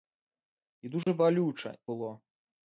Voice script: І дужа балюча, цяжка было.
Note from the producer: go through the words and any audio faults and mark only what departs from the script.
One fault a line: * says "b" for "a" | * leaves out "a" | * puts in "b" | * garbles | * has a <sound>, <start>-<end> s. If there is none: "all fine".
* has a dropout, 1.0-1.1 s
* leaves out "цяжка"